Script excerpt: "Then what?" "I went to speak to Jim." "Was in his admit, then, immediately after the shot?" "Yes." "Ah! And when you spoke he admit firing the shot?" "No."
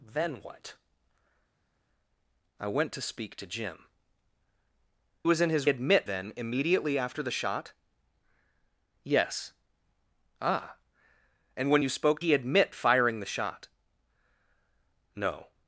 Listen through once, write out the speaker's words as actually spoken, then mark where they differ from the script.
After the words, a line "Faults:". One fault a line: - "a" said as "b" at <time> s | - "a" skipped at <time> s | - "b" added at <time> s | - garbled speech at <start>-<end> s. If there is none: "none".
"Then what?" "I went to speak to Jim." "Was in his admit, then, immediately after the shot?" "Yes." "Ah! And when you spoke he admit firing the shot?" "No."
Faults:
none